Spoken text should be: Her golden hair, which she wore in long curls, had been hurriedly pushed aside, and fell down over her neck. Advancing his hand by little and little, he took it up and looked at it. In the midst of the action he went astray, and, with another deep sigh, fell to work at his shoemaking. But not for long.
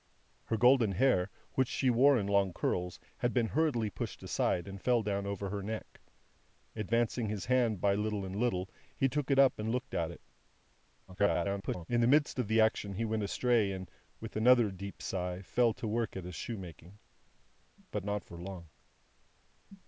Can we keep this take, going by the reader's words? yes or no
no